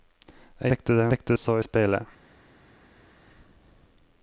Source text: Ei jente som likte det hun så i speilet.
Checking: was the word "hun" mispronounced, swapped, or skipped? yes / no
yes